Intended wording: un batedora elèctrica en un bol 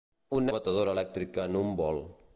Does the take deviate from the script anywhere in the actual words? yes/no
no